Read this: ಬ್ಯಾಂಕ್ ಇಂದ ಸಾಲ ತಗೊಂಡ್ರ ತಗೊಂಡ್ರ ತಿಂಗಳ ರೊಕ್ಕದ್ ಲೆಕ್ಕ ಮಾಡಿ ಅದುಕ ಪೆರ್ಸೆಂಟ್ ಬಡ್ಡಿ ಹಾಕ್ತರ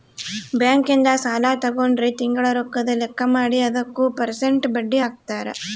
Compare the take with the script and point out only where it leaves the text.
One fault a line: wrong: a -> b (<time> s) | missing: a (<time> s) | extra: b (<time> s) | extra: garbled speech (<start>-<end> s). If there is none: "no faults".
missing: ತಗೊಂಡ್ರ (2.1 s)